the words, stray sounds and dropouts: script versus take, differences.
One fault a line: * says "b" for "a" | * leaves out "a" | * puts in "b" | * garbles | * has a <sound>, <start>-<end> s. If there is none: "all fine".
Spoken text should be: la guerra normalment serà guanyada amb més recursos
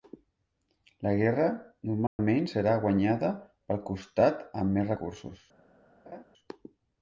* has a dropout, 2.1-2.2 s
* puts in "pel costat"
* has a laugh, 6.1-6.2 s